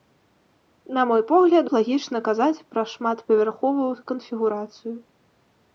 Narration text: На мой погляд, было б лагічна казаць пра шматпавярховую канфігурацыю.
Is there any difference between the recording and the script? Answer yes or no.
yes